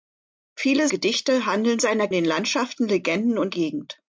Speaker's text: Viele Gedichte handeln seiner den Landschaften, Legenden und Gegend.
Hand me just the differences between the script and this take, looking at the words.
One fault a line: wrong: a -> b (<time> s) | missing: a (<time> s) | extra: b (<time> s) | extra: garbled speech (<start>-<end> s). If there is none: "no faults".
no faults